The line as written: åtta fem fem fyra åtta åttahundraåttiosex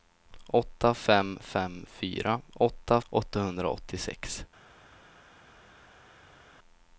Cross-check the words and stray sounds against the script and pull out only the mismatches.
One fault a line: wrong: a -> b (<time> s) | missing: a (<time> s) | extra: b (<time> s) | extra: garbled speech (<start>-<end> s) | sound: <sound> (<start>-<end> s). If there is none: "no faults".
no faults